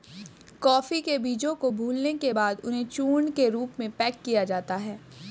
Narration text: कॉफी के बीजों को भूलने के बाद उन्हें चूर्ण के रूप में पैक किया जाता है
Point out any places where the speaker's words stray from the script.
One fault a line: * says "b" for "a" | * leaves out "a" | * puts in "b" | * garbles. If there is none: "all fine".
all fine